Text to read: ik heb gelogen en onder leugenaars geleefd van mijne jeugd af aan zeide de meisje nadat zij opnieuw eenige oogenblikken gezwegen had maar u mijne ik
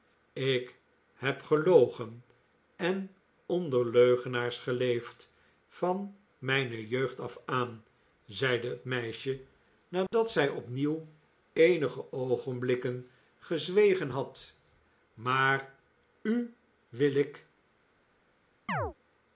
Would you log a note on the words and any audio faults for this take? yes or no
yes